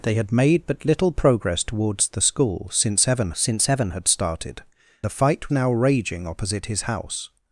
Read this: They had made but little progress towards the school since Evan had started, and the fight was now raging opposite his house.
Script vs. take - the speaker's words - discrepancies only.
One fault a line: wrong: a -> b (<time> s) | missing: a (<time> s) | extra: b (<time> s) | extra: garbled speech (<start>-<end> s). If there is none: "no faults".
extra: since Evan (3.3 s)
missing: and (4.6 s)
missing: was (5.5 s)